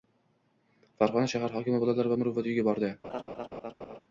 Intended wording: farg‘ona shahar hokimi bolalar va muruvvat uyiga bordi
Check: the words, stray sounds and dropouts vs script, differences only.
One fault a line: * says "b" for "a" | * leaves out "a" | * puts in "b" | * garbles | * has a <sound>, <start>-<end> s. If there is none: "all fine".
* has a laugh, 3.0-4.0 s